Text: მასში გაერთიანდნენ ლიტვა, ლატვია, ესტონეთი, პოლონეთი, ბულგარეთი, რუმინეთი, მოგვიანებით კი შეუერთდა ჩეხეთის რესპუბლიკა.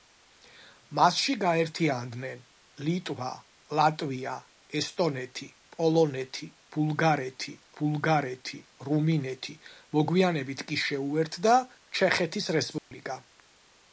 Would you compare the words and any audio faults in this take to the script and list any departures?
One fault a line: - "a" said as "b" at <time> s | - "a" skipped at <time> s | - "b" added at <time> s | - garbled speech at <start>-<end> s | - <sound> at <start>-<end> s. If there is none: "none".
- "ბულგარეთი" added at 7.8 s
- dropout at 12.8-12.9 s